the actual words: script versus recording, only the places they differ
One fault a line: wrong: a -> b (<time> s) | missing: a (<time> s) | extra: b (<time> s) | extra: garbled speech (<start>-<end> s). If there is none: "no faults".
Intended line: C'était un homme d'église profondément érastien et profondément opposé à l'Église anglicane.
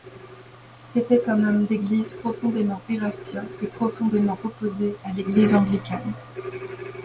no faults